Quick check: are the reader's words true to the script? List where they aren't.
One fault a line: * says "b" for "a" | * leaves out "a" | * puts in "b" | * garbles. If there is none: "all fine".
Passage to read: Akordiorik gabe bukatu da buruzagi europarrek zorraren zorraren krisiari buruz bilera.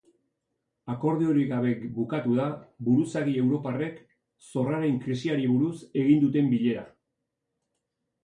* leaves out "zorraren"
* puts in "egin duten"